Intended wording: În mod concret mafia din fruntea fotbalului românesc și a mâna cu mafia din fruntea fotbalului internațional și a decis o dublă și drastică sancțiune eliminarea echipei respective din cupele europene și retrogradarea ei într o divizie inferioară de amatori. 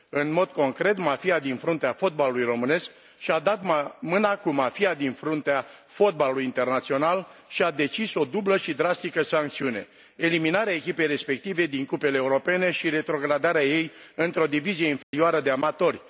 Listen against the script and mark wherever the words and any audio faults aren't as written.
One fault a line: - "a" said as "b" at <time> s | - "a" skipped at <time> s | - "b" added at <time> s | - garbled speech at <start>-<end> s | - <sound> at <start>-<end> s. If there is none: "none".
- "dat" added at 3.4 s
- dropout at 15.0-15.1 s